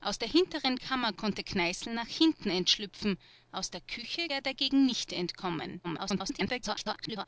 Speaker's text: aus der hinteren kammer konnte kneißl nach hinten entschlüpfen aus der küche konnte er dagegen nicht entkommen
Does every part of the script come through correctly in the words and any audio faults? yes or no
no